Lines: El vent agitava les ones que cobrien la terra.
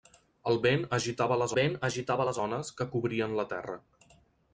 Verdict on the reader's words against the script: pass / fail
fail